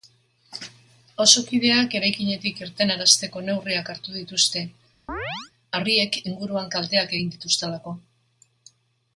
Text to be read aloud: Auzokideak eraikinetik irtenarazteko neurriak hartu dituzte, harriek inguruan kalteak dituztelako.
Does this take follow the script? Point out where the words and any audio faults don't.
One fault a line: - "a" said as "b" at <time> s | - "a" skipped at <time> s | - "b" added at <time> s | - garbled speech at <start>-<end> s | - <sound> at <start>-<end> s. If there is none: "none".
- chirp at 5.1-5.5 s
- "egin" added at 7.2 s